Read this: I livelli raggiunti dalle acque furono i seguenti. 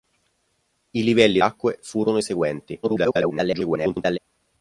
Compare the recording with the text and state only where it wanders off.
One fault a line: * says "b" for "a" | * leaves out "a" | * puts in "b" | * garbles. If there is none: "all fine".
* leaves out "raggiunti dalle"
* garbles